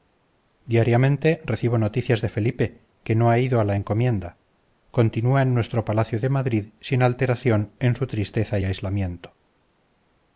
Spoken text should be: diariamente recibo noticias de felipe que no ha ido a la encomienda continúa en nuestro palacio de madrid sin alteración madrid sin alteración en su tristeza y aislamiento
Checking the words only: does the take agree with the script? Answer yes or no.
no